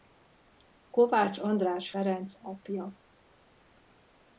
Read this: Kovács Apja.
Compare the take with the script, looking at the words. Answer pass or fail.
fail